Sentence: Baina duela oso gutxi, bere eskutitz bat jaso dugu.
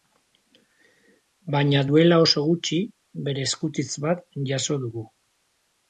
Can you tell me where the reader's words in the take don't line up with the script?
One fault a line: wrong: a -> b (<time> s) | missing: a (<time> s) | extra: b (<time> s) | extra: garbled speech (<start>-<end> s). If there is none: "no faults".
no faults